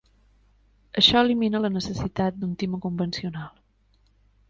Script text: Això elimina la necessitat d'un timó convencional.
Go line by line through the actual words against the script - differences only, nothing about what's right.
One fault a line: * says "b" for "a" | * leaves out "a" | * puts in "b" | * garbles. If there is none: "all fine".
all fine